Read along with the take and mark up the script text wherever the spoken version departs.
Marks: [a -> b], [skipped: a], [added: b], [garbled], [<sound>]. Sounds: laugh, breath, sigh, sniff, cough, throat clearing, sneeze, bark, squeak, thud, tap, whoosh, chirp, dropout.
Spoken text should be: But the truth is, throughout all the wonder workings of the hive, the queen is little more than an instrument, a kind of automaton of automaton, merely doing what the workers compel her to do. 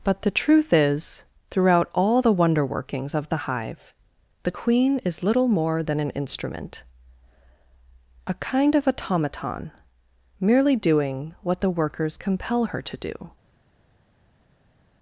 But the truth is, throughout all the wonder workings of the hive, the queen is little more than an instrument, a kind of automaton [skipped: of automaton,] merely doing what the workers compel her to do.